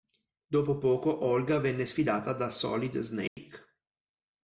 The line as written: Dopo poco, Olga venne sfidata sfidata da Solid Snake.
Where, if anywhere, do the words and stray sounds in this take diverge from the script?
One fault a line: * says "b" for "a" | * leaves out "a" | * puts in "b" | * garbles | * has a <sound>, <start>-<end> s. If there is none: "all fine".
* leaves out "sfidata"
* has a dropout, 3.3-3.4 s